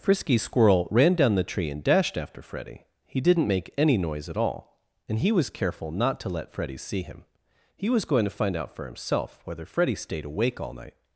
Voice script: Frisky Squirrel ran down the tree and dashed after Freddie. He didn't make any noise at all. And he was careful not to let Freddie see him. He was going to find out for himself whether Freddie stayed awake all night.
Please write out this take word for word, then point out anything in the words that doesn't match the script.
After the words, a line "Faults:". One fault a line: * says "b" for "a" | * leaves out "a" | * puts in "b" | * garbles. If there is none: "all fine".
Frisky Squirrel ran down the tree and dashed after Freddie. He didn't make any noise at all. And he was careful not to let Freddie see him. He was going to find out for himself whether Freddie stayed awake all night.
Faults:
all fine